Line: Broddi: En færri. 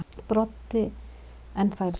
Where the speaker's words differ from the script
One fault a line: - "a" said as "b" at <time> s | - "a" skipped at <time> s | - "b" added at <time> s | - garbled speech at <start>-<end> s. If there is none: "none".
none